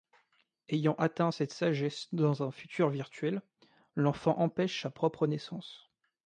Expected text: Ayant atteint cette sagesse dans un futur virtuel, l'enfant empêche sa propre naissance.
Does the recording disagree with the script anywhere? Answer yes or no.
no